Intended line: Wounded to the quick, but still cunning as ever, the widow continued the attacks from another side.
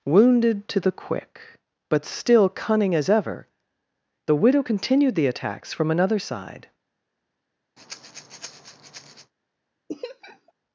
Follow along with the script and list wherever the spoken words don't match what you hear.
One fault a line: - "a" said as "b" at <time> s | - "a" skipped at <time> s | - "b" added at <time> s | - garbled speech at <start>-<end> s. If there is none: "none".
none